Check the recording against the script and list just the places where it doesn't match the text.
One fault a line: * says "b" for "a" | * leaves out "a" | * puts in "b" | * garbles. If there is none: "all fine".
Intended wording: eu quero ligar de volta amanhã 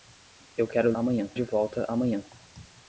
* says "amanhã" for "ligar"